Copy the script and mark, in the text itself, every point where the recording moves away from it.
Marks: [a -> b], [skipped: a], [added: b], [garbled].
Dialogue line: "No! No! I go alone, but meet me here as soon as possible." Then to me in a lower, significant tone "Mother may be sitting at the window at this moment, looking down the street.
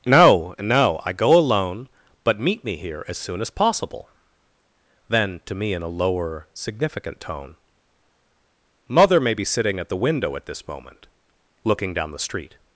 "No! No! I go alone, but meet me here as soon as possible." Then to me in a lower, significant tone "Mother may be sitting at the window at this moment, looking down the street.